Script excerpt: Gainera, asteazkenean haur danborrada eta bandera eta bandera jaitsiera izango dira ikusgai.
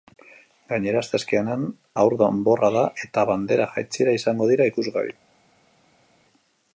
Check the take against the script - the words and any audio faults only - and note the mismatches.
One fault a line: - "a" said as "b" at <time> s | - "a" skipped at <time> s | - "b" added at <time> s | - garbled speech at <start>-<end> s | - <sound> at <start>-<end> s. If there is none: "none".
- "eta bandera" skipped at 3.7 s